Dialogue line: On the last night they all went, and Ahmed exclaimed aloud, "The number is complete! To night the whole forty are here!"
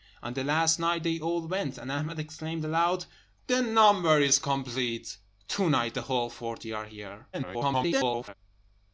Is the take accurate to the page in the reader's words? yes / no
no